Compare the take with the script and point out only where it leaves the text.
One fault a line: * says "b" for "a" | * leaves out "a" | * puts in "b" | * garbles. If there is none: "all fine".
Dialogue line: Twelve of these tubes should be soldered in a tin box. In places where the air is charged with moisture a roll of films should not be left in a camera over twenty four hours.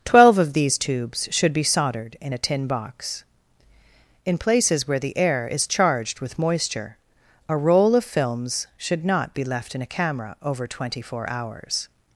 all fine